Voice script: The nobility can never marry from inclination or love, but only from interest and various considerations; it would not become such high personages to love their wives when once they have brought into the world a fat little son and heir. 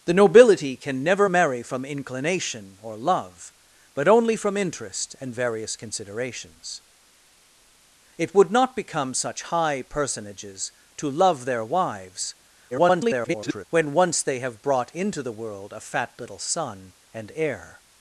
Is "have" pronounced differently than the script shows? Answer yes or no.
no